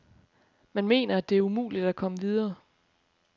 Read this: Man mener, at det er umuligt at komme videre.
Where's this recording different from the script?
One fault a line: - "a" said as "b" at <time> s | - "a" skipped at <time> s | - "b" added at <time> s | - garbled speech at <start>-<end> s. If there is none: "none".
none